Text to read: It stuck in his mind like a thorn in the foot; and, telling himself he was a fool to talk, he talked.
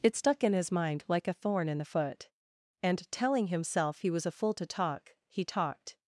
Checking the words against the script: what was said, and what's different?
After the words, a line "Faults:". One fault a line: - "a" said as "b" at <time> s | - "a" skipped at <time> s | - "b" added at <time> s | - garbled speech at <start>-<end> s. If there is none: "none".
It stuck in his mind like a thorn in the foot; and, telling himself he was a fool to talk, he talked.
Faults:
none